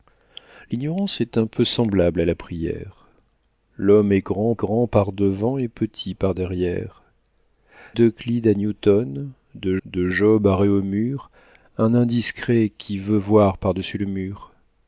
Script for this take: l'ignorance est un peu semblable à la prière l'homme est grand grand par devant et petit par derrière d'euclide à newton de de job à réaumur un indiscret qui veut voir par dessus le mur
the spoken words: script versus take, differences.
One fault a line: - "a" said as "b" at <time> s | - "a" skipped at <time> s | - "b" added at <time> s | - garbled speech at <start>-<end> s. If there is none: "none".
none